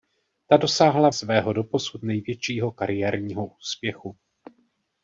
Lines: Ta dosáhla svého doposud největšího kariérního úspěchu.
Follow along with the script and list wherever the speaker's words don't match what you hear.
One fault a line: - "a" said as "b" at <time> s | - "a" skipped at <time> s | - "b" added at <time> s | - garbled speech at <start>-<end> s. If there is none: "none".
none